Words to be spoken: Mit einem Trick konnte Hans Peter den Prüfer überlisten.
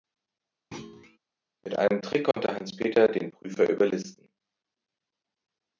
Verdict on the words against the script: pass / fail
pass